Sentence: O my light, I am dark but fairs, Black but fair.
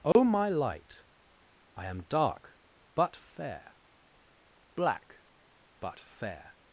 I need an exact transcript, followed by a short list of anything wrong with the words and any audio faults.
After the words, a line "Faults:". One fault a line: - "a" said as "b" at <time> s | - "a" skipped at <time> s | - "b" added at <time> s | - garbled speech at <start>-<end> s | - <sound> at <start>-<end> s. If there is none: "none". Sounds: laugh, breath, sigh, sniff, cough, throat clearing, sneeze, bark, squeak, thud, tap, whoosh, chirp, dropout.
O my light, I am dark but fair, Black but fair.
Faults:
- dropout at 0.1-0.2 s
- "fairs" said as "fair" at 3.1 s